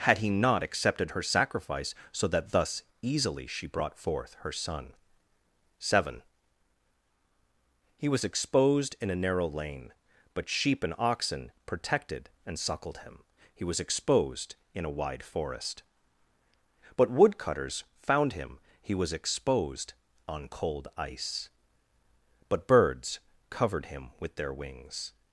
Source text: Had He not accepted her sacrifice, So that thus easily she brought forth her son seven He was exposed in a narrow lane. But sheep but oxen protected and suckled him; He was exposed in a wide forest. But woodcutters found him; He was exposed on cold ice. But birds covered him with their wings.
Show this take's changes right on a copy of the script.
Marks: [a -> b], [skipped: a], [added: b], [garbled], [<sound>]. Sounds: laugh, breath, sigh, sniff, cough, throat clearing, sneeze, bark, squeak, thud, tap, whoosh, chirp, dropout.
Had He not accepted her sacrifice, So that thus easily she brought forth her son seven He was exposed in a narrow lane. But sheep [but -> and] oxen protected and suckled him; He was exposed in a wide forest. But woodcutters found him; He was exposed on cold ice. But birds covered him with their wings.